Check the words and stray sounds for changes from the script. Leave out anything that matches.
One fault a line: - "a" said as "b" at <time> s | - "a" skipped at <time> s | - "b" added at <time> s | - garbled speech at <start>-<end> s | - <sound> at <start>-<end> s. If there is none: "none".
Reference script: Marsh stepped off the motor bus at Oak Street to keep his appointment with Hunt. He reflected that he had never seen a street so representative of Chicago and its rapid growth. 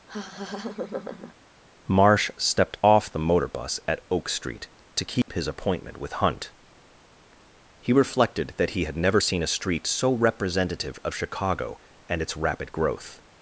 - laugh at 0.1-1.3 s
- dropout at 5.2-5.3 s